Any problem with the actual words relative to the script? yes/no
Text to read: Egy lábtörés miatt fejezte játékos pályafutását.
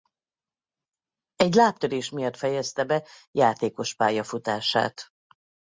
yes